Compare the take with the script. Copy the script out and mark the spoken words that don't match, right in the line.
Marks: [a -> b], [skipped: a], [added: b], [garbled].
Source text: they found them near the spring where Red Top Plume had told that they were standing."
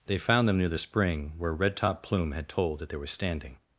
they found them near the spring where Red Top Plume had told that they were standing."